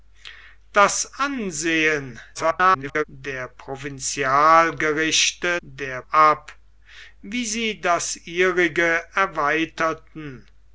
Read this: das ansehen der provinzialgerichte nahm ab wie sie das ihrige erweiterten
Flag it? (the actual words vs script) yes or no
yes